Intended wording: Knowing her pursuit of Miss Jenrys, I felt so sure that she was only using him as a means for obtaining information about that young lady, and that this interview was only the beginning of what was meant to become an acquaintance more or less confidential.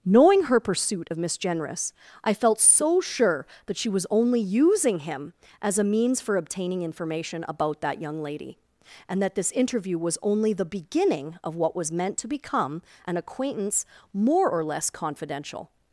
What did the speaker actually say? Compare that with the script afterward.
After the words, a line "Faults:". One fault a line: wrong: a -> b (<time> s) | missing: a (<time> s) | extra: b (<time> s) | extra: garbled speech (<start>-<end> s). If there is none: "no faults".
Knowing her pursuit of Miss Jenrys, I felt so sure that she was only using him as a means for obtaining information about that young lady, and that this interview was only the beginning of what was meant to become an acquaintance more or less confidential.
Faults:
no faults